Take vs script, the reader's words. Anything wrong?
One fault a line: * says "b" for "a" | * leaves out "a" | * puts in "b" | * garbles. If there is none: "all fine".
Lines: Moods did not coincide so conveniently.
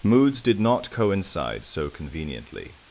all fine